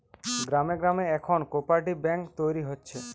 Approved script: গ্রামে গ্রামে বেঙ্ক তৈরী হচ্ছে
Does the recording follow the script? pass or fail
fail